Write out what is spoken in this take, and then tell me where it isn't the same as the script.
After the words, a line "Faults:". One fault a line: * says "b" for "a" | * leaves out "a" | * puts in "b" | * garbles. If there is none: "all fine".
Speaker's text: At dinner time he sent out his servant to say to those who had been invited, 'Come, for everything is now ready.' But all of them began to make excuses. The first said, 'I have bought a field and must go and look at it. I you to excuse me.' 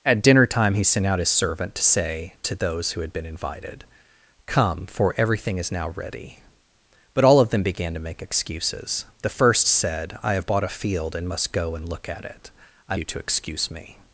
At dinner time he sent out his servant to say to those who had been invited, 'Come, for everything is now ready.' But all of them began to make excuses. The first said, 'I have bought a field and must go and look at it. I you to excuse me.'
Faults:
all fine